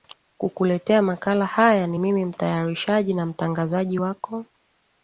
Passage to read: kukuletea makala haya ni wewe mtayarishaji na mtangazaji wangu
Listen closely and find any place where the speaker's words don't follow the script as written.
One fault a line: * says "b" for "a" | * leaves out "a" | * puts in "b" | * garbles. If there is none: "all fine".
* says "mimi" for "wewe"
* says "wako" for "wangu"